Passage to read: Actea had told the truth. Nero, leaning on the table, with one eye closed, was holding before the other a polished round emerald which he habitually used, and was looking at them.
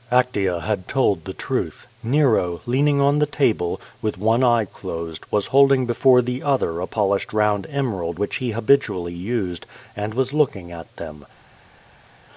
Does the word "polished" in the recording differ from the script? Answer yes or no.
no